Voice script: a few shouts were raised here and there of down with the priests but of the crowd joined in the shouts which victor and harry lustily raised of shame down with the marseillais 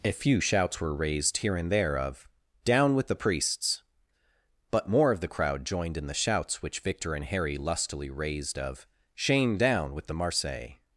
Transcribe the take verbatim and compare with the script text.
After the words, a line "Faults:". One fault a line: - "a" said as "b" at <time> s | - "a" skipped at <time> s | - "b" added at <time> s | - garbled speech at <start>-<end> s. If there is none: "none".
a few shouts were raised here and there of down with the priests but more of the crowd joined in the shouts which victor and harry lustily raised of shame down with the marseillais
Faults:
- "more" added at 4.9 s